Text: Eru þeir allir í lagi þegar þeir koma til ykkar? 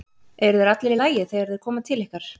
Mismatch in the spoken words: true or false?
false